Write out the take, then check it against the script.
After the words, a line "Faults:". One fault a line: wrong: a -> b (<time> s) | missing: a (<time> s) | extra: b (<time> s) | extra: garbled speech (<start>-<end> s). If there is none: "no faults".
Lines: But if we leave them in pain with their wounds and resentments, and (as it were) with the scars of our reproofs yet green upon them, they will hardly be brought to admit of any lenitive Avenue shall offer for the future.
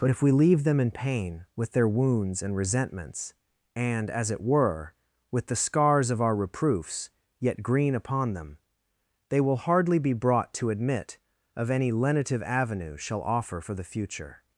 But if we leave them in pain with their wounds and resentments, and (as it were) with the scars of our reproofs yet green upon them, they will hardly be brought to admit of any lenitive Avenue shall offer for the future.
Faults:
no faults